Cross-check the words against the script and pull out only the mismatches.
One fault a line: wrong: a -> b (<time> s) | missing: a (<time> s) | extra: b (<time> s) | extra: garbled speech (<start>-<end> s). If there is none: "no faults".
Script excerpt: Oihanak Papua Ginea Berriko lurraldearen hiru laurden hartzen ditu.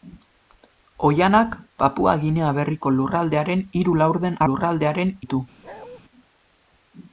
wrong: hartzen -> lurraldearen (4.4 s)